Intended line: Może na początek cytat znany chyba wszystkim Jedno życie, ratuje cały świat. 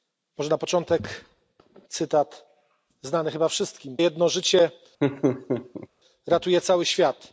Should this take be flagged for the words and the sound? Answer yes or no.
yes